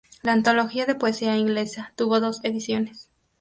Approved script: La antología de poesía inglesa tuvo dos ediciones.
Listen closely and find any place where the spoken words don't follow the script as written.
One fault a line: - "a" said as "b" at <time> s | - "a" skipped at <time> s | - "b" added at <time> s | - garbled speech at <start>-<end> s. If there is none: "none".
none